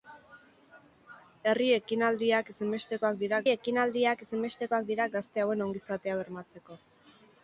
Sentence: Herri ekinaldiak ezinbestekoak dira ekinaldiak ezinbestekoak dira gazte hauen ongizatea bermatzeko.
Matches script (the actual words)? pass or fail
pass